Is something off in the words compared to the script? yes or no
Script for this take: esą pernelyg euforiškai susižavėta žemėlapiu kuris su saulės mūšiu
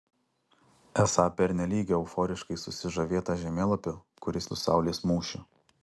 no